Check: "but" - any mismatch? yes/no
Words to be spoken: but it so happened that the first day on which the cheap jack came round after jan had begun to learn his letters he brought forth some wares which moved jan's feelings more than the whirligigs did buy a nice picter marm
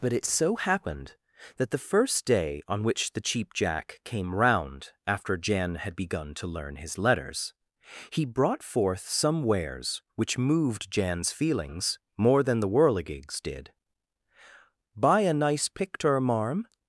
no